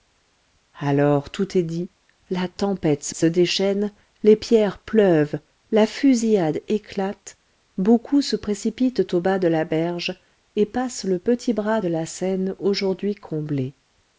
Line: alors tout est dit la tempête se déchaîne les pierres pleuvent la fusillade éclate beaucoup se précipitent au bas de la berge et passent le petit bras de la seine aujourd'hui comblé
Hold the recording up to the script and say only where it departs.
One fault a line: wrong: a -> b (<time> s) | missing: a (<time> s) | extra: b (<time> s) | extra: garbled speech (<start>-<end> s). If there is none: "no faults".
extra: se (3.1 s)